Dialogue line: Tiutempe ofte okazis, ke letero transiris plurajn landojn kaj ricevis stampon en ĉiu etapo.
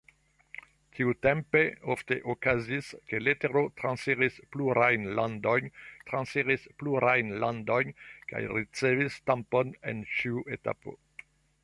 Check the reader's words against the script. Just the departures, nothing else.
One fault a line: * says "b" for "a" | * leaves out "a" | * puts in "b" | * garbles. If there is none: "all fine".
* puts in "transiris plurajn landojn"